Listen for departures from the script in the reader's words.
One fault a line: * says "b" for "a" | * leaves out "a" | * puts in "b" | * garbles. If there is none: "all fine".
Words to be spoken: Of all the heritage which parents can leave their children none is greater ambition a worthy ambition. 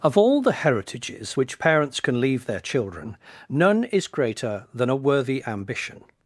* says "heritages" for "heritage"
* says "than" for "ambition"